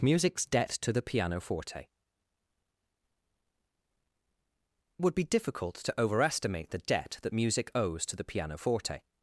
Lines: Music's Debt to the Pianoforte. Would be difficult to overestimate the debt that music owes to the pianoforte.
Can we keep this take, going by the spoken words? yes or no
yes